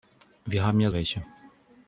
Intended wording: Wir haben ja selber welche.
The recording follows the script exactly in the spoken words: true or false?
false